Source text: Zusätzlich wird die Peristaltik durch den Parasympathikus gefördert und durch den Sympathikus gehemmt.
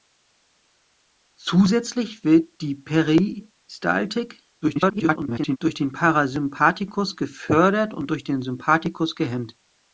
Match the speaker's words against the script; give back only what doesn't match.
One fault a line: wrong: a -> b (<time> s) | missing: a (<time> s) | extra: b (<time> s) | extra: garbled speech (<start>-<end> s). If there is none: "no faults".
extra: garbled speech (4.6-5.6 s)